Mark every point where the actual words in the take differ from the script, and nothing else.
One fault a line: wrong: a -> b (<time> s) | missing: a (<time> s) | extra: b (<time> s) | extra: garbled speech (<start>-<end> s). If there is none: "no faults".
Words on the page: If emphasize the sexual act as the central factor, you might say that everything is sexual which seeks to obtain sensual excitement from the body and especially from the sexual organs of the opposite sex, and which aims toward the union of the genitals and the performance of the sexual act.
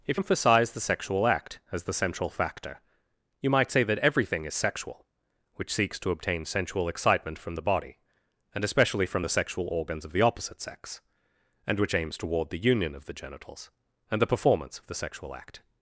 no faults